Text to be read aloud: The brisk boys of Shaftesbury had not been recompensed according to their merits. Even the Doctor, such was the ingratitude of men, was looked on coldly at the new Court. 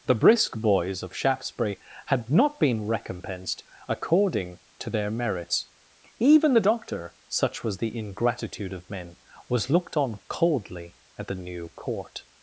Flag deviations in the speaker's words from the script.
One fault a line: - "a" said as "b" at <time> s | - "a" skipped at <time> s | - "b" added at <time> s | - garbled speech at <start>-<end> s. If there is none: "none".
none